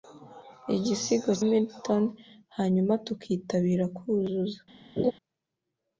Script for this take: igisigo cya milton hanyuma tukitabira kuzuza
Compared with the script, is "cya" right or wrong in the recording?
wrong